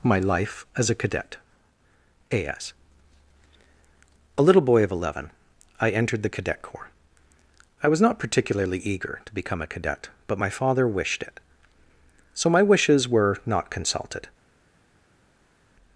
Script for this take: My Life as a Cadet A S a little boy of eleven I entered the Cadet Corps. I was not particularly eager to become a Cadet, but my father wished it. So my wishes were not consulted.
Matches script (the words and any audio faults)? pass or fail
pass